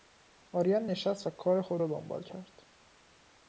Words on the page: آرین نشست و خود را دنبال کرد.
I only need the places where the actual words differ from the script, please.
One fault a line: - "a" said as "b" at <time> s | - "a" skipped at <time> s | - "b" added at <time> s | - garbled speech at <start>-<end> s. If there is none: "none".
- "کار" added at 1.3 s